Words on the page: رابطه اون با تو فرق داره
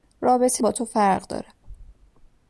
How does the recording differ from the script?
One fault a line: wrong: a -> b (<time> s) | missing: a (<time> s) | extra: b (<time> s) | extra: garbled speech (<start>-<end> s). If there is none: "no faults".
missing: اون (0.6 s)